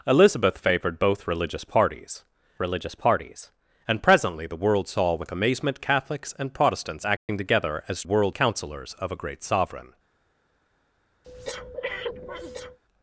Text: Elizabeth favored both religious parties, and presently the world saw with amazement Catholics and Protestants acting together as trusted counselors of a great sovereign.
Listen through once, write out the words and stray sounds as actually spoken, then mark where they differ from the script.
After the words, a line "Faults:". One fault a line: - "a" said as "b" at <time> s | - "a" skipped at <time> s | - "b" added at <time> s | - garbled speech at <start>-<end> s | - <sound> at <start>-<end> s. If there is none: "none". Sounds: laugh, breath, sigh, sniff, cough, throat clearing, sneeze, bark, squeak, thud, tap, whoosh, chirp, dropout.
Elizabeth favored both religious parties religious parties, and presently the world saw with amazement Catholics and Protestants acting together as world counselors of a great sovereign.
Faults:
- "religious parties" added at 2.6 s
- dropout at 7.2-7.3 s
- "trusted" said as "world" at 8.0 s
- breath at 11.2-12.8 s